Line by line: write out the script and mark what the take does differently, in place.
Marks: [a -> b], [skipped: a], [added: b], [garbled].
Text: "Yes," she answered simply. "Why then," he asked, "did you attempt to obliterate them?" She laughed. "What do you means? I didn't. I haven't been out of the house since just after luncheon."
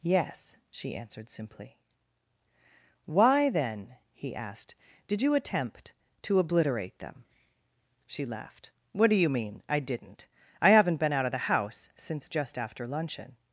"Yes," she answered simply. "Why then," he asked, "did you attempt to obliterate them?" She laughed. "What do you [means? -> mean] I didn't. I haven't been out of the house since just after luncheon."